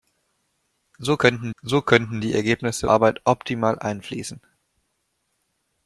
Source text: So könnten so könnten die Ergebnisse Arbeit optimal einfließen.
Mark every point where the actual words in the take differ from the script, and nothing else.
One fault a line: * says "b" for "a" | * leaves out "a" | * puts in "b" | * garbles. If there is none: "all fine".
all fine